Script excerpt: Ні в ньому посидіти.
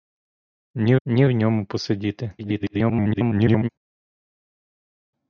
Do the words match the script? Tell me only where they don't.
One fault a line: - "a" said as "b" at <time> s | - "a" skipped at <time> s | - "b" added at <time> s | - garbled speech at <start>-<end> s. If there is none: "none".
- "ні" added at 1.1 s
- garbled speech at 2.4-3.7 s